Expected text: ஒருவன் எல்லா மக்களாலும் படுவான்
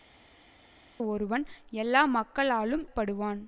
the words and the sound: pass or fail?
pass